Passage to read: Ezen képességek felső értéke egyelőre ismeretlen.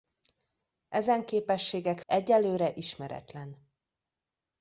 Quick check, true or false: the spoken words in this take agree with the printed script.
false